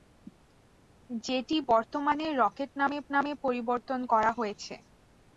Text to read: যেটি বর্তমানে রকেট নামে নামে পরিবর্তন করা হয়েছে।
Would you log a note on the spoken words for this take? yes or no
no